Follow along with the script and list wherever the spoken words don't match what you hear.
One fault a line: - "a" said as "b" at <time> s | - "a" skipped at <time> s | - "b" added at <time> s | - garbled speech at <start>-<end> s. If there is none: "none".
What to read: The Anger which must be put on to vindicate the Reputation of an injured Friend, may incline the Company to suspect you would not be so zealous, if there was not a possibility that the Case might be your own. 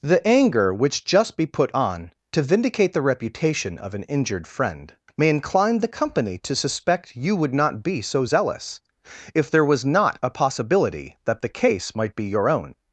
- "must" said as "just" at 1.1 s